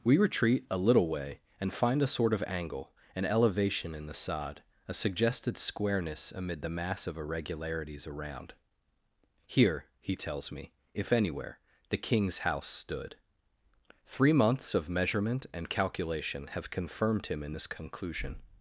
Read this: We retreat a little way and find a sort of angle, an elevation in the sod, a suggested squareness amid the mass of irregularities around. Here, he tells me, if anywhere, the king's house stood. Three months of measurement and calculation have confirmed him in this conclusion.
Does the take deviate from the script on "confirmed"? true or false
false